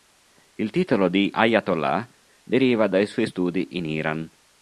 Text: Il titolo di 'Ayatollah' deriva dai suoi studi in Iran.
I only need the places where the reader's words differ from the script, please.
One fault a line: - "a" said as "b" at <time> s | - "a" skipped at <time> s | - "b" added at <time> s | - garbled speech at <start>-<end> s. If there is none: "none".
none